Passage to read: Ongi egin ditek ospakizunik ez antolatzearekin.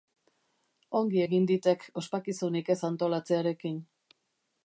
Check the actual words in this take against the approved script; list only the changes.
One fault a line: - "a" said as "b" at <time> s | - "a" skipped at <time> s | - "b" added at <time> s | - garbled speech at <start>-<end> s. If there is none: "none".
none